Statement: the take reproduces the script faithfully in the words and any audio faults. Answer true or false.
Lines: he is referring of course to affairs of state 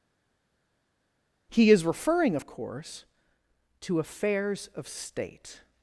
true